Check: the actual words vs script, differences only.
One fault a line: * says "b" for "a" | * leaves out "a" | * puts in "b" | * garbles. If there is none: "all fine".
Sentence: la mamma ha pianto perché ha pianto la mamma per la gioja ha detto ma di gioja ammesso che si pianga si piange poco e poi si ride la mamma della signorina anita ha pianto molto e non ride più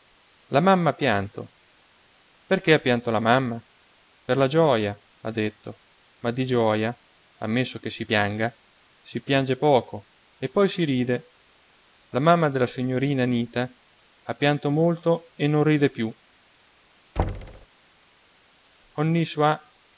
all fine